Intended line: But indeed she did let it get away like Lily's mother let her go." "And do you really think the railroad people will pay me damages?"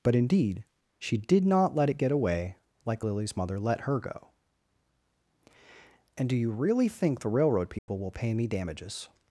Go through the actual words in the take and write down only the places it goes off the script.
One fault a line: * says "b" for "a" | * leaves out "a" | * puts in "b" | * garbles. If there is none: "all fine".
* puts in "not"